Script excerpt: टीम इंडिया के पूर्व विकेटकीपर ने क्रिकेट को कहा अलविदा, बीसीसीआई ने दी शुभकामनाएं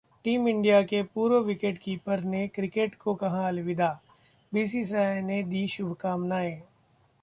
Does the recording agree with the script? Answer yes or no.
yes